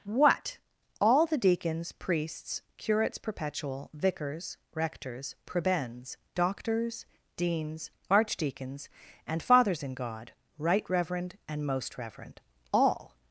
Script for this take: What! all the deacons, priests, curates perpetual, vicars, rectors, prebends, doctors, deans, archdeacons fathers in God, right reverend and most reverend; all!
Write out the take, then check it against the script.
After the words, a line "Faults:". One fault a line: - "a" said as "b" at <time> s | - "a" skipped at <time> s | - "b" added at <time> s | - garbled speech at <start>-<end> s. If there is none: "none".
What! all the deacons, priests, curates perpetual, vicars, rectors, prebends, doctors, deans, archdeacons and fathers in God, right reverend and most reverend; all!
Faults:
- "and" added at 9.3 s